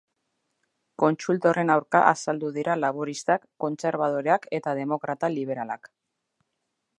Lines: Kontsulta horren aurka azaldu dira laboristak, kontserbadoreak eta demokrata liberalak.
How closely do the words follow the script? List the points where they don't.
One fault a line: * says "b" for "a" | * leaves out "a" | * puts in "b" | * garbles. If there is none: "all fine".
all fine